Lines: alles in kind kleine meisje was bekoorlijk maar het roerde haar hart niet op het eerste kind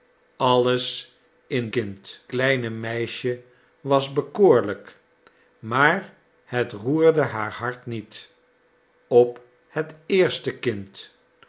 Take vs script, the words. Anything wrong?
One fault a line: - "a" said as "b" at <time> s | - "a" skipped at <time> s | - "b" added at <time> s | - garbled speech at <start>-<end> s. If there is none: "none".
none